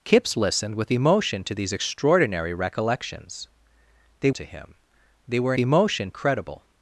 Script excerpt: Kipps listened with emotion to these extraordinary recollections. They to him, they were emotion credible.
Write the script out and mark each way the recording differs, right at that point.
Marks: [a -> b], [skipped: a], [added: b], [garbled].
Kipps listened with emotion to these extraordinary recollections. They to him, they were emotion credible.